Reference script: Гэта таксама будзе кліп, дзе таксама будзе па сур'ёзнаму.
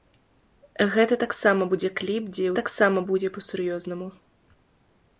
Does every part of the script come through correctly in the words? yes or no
yes